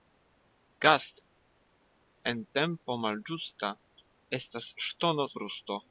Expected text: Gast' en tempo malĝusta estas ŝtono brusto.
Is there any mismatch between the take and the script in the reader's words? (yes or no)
no